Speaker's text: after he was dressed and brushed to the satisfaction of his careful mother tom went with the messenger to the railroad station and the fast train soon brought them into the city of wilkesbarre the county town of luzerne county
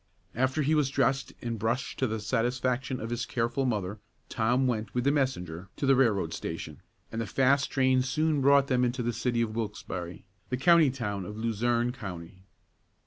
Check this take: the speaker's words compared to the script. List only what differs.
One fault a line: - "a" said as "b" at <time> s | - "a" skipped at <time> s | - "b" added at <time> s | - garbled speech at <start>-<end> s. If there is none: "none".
none